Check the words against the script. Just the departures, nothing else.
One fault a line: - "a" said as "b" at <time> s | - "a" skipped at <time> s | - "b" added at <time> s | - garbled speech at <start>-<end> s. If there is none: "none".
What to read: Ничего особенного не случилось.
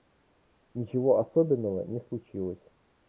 none